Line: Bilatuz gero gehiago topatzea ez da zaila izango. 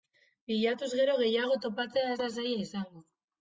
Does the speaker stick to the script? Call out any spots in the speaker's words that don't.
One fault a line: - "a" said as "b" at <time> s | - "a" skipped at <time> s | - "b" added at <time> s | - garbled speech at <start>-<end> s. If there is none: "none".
none